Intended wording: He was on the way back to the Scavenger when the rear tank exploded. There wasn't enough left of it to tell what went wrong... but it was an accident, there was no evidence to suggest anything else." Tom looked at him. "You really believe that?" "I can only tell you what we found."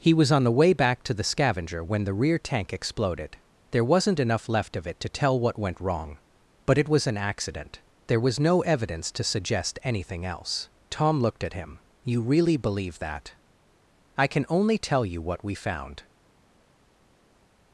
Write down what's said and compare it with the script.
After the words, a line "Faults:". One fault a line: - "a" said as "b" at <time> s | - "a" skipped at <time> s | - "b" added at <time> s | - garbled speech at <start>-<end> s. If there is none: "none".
He was on the way back to the Scavenger when the rear tank exploded. There wasn't enough left of it to tell what went wrong... but it was an accident, there was no evidence to suggest anything else." Tom looked at him. "You really believe that?" "I can only tell you what we found."
Faults:
none